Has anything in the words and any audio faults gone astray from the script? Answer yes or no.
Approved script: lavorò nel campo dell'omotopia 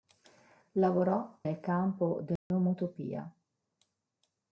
yes